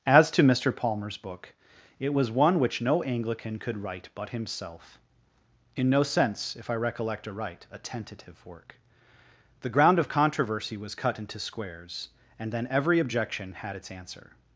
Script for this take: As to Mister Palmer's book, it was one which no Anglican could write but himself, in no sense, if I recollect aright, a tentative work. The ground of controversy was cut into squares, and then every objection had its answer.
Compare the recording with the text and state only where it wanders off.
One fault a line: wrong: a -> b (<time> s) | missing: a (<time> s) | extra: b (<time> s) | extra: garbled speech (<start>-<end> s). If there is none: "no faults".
no faults